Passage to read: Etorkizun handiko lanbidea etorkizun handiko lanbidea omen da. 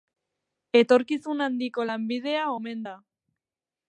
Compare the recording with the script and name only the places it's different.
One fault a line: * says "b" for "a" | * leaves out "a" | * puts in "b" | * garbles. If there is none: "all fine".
* leaves out "etorkizun handiko lanbidea"